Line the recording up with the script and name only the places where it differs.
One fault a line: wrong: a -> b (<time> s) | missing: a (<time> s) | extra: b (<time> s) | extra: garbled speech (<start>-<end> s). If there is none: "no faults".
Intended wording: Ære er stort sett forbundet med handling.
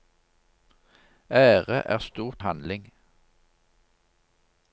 missing: sett forbundet med (2.4 s)